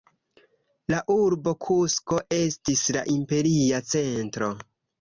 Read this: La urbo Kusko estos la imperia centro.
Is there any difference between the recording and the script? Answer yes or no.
yes